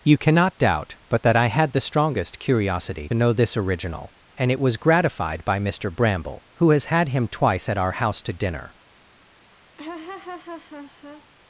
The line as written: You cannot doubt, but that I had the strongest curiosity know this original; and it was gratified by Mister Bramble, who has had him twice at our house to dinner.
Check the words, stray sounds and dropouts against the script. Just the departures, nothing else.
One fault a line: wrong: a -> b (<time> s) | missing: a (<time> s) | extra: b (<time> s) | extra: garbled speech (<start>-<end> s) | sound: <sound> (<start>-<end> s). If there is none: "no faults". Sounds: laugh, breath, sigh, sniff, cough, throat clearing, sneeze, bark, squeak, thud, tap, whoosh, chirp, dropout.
sound: laugh (9.8-11.3 s)